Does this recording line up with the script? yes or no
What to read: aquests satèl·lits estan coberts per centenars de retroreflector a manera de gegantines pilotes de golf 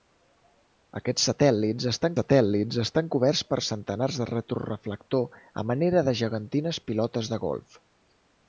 no